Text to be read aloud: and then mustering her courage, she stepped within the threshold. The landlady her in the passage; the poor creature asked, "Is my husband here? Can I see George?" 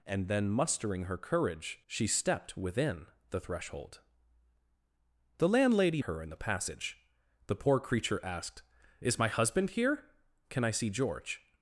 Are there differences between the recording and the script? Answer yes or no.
no